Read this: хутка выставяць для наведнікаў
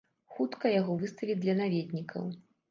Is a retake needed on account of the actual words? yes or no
yes